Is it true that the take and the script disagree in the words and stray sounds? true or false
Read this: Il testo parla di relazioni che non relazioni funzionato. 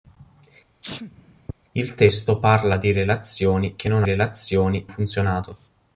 true